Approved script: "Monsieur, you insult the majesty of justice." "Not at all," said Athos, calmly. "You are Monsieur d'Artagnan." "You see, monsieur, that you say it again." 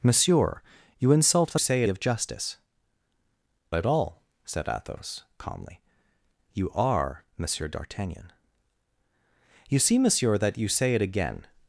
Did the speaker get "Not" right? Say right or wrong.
wrong